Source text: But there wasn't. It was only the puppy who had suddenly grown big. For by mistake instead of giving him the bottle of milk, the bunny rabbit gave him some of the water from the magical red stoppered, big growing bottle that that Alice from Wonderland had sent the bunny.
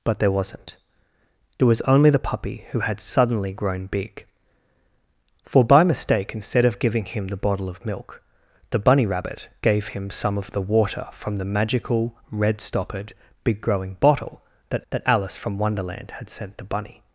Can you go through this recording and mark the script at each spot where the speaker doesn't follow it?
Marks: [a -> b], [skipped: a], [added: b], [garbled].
But there wasn't. It was only the puppy who had suddenly grown big. For by mistake instead of giving him the bottle of milk, the bunny rabbit gave him some of the water from the magical red stoppered, big growing bottle that that Alice from Wonderland had sent the bunny.